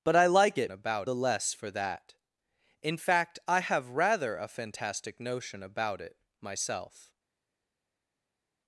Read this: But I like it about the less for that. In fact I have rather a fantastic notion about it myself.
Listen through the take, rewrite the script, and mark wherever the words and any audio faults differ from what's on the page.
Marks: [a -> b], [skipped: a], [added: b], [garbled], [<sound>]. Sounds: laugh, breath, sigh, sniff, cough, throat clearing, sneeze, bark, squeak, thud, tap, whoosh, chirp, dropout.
But I like it about the less for that. In fact I have rather a fantastic notion about it myself.